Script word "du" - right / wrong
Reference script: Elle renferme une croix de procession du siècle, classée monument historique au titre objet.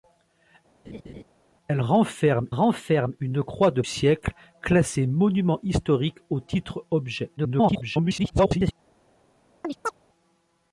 wrong